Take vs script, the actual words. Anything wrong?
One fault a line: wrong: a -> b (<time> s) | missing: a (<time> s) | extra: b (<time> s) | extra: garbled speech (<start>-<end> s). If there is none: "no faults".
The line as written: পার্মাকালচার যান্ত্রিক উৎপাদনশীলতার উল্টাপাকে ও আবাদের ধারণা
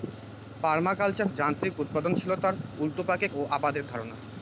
no faults